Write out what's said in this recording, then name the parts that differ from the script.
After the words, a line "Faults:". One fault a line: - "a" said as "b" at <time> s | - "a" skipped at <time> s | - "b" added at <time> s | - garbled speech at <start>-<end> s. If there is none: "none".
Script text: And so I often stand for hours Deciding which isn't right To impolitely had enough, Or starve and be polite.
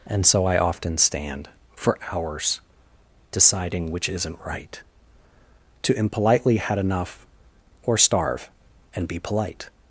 And so I often stand for hours Deciding which isn't right To impolitely had enough, Or starve and be polite.
Faults:
none